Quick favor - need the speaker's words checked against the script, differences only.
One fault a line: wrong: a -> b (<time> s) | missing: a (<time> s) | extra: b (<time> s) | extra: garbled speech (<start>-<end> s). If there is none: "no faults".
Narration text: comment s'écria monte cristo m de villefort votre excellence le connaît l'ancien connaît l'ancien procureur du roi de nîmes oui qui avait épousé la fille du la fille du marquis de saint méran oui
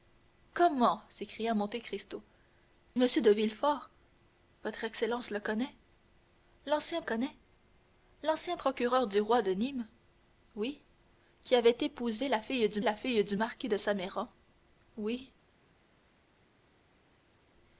no faults